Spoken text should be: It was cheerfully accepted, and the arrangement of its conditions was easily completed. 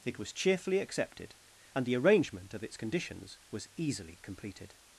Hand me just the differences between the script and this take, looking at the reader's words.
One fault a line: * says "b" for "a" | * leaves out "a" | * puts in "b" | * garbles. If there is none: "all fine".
all fine